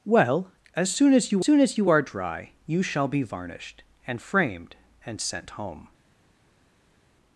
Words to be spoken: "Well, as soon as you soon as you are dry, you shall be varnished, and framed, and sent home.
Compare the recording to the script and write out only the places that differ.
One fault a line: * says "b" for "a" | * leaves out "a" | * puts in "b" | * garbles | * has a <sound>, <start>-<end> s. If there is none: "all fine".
all fine